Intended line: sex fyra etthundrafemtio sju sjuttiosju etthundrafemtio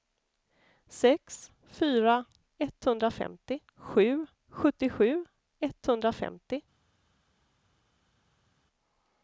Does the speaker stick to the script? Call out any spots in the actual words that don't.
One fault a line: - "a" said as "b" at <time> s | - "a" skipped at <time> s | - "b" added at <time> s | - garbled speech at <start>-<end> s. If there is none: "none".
none